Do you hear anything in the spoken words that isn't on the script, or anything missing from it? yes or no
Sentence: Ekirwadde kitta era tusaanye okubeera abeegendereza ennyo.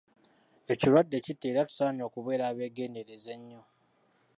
no